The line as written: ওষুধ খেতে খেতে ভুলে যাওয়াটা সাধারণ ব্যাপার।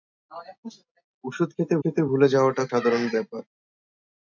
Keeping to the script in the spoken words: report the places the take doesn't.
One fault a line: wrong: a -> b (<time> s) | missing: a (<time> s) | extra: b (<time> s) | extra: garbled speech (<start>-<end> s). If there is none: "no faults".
no faults